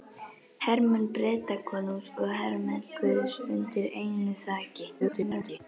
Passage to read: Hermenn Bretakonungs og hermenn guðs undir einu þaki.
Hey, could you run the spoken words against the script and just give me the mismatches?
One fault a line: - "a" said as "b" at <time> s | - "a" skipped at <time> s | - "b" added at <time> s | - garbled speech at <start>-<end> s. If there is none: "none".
- garbled speech at 5.0-5.6 s